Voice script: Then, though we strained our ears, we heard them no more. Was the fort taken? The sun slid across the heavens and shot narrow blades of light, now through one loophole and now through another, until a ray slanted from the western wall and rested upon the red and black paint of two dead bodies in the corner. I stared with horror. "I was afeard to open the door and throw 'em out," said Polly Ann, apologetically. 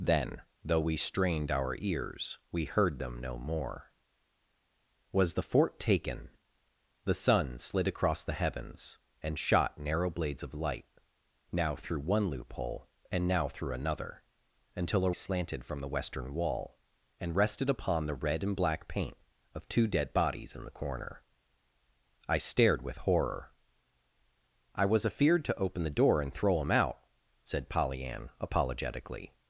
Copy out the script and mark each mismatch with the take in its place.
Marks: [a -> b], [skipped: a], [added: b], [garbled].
Then, though we strained our ears, we heard them no more. Was the fort taken? The sun slid across the heavens and shot narrow blades of light, now through one loophole and now through another, until a [skipped: ray] slanted from the western wall and rested upon the red and black paint of two dead bodies in the corner. I stared with horror. "I was afeard to open the door and throw 'em out," said Polly Ann, apologetically.